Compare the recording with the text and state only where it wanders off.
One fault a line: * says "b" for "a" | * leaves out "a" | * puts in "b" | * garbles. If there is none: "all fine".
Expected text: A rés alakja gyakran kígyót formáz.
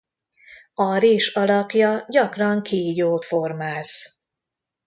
all fine